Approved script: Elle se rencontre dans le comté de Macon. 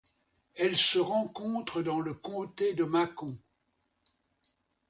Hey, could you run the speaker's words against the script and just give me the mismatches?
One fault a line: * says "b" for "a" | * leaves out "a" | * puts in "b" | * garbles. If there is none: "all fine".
all fine